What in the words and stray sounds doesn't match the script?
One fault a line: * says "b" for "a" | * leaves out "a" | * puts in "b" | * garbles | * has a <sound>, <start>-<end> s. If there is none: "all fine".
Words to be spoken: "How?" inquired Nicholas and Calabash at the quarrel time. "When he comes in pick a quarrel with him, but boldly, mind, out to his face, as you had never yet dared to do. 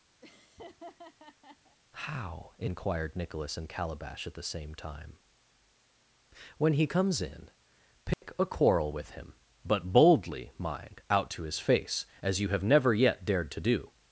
* has a laugh, 0.2-1.8 s
* says "same" for "quarrel"
* has a dropout, 8.1-8.2 s
* says "have" for "had"